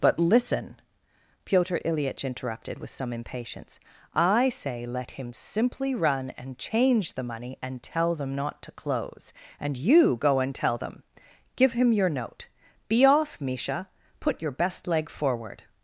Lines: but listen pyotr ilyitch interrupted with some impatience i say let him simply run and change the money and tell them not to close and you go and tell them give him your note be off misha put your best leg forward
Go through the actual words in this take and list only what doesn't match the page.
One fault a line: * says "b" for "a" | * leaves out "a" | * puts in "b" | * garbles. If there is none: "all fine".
all fine